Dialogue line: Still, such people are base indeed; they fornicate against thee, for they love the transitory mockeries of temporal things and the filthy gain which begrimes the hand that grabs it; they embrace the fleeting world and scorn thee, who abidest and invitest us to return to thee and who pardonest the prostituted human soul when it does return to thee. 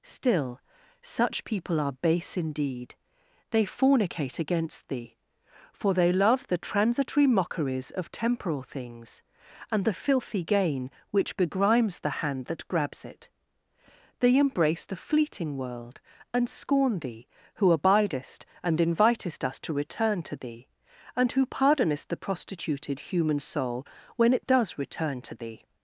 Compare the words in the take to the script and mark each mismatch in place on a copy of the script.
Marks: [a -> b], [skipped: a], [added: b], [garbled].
Still, such people are base indeed; they fornicate against thee, for they love the transitory mockeries of temporal things and the filthy gain which begrimes the hand that grabs it; they embrace the fleeting world and scorn thee, who abidest and invitest us to return to thee and who pardonest the prostituted human soul when it does return to thee.